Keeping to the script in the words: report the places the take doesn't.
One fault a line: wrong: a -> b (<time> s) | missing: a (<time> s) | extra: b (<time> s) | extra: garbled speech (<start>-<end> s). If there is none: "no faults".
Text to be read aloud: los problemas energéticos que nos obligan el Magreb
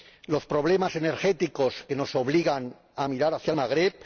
extra: a mirar hacia (3.0 s)